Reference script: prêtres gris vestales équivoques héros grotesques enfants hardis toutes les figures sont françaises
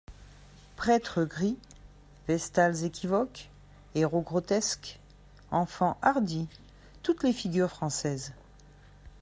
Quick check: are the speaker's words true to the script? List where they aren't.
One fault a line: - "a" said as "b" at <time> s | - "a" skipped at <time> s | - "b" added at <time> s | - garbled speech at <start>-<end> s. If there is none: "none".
- "sont" skipped at 7.7 s